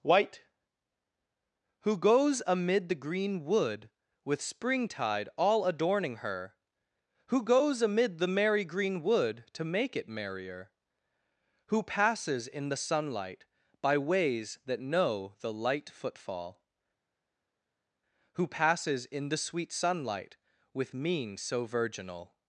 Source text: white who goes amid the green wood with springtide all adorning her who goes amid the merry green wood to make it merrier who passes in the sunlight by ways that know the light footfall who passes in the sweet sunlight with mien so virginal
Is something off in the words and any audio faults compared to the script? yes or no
no